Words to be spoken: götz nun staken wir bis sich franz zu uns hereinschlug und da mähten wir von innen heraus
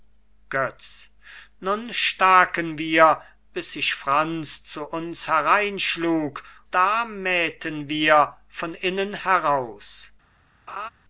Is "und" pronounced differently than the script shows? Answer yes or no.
yes